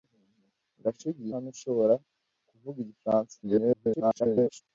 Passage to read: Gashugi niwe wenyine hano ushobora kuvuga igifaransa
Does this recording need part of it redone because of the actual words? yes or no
yes